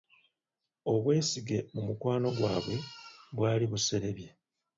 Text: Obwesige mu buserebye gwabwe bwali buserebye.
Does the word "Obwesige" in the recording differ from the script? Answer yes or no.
no